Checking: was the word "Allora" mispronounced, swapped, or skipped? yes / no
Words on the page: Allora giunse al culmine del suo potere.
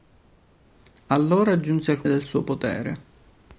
no